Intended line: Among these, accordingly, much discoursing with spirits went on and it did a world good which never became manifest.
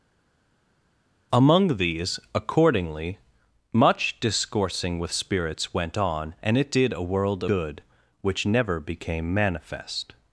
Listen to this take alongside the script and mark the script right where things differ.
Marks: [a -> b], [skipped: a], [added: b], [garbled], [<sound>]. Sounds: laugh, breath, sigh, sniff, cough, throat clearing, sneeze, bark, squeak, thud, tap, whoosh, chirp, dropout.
Among these, accordingly, much discoursing with spirits went on and it did a world good which never became manifest.